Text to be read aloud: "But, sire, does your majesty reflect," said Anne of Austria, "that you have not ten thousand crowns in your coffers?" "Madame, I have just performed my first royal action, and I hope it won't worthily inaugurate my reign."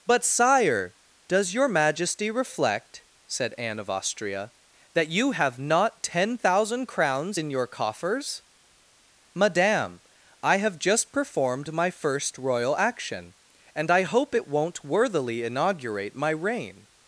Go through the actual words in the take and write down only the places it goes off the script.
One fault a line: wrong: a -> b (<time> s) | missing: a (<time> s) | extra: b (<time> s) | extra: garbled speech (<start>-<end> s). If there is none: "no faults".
no faults